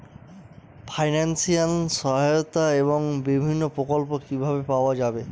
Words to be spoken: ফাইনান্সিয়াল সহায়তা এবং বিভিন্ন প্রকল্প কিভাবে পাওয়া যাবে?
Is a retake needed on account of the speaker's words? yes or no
no